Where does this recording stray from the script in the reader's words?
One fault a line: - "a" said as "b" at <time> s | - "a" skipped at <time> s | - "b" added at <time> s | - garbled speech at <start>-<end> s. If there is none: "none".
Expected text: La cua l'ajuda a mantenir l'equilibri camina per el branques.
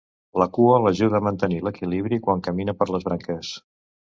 - "quan" added at 2.3 s
- "el" said as "les" at 3.0 s